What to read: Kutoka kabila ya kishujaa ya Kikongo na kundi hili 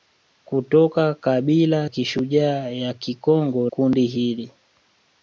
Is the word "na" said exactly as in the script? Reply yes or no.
no